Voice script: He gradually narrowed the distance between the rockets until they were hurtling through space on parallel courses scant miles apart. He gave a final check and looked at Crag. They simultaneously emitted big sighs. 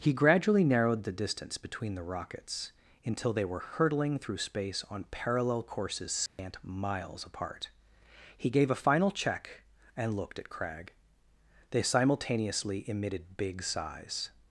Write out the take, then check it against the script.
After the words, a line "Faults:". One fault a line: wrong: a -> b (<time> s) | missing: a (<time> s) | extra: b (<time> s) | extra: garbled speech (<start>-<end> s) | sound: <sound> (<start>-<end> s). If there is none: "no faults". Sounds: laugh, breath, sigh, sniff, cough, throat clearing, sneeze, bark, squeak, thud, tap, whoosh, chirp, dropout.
He gradually narrowed the distance between the rockets until they were hurtling through space on parallel courses scant miles apart. He gave a final check and looked at Crag. They simultaneously emitted big sighs.
Faults:
sound: dropout (6.3-6.4 s)